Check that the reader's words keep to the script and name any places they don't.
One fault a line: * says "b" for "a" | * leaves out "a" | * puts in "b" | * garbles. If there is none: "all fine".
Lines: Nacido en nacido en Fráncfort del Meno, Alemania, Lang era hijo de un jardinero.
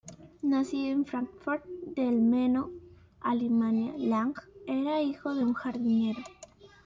* leaves out "nacido en"